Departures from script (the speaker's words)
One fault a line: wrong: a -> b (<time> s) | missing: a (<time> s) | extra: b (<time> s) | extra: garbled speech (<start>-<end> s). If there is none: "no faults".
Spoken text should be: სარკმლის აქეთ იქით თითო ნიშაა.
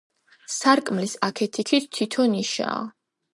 no faults